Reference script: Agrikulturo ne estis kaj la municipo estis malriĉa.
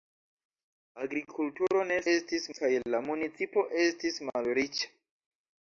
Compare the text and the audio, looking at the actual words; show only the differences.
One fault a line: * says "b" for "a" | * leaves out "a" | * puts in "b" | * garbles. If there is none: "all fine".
all fine